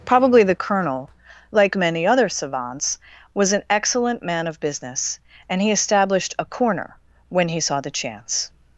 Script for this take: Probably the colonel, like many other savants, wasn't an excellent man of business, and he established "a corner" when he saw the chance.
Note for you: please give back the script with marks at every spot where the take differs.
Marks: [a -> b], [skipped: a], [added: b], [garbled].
Probably the colonel, like many other savants, [wasn't -> was] an excellent man of business, and he established "a corner" when he saw the chance.